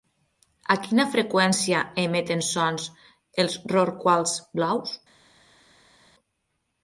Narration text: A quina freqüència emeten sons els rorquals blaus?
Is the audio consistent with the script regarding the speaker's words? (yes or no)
yes